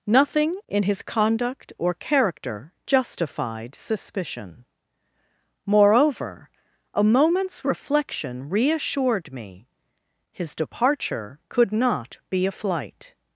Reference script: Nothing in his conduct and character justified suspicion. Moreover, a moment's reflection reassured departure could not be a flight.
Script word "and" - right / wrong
wrong